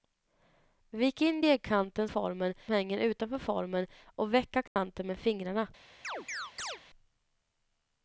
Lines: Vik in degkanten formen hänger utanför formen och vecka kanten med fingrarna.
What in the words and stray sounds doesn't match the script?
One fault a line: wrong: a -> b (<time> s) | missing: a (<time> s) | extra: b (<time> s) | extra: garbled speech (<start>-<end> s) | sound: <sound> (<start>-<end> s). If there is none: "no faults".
sound: dropout (4.7-4.8 s)
sound: chirp (6.0-6.8 s)